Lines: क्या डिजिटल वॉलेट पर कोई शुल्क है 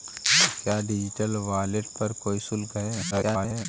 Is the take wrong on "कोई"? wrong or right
right